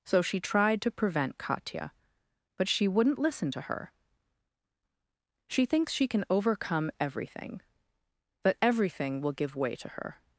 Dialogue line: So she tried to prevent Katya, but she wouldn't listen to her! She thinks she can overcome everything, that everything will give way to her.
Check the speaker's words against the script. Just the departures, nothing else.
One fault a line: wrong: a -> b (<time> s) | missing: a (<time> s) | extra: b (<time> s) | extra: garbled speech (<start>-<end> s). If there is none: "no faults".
no faults